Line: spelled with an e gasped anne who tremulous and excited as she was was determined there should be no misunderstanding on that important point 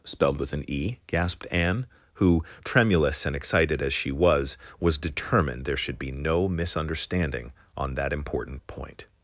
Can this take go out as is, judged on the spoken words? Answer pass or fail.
pass